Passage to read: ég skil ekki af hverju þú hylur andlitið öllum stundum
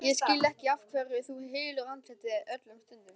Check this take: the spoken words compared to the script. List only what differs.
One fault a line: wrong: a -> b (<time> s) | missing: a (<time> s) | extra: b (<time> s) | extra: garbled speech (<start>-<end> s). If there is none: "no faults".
no faults